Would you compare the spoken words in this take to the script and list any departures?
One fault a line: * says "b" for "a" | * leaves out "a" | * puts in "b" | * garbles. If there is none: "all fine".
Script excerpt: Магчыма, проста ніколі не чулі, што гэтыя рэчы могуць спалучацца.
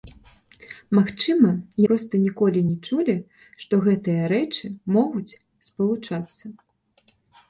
all fine